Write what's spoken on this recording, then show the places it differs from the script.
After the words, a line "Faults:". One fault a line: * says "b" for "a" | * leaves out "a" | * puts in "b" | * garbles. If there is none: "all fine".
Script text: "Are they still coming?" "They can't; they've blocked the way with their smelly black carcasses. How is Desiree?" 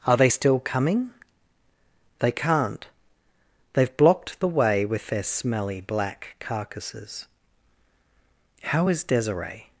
"Are they still coming?" "They can't; they've blocked the way with their smelly black carcasses. How is Desiree?"
Faults:
all fine